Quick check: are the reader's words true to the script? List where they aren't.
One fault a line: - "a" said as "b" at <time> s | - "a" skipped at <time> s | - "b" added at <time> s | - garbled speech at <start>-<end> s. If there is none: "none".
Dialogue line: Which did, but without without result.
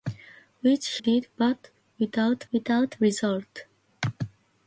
none